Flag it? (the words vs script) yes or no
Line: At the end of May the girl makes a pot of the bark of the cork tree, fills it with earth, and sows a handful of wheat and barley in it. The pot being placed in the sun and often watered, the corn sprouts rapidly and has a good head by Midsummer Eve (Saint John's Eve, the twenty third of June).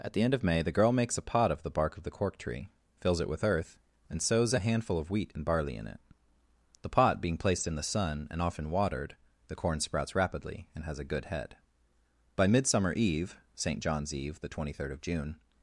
no